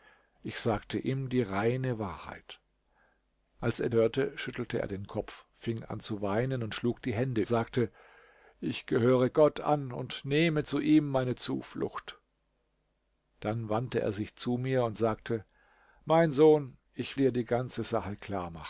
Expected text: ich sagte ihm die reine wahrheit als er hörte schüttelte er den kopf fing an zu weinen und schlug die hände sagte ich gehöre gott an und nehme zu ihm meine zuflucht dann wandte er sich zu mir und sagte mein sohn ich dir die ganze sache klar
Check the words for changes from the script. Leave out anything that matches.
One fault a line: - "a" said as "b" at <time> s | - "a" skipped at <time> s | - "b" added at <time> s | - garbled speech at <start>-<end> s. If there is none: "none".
none